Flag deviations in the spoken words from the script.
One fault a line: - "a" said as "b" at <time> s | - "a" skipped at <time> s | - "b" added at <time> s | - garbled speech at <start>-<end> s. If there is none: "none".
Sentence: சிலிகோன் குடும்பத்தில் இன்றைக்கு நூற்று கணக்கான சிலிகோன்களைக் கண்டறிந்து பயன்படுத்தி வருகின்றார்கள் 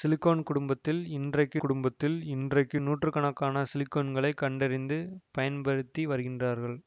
- "குடும்பத்தில் இன்றைக்கு" added at 1.6 s